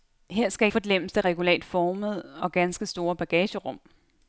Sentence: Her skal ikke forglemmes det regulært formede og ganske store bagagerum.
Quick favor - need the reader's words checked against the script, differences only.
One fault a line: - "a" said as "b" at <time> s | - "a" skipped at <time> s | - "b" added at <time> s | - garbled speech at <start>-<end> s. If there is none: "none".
- "ikke" skipped at 0.7 s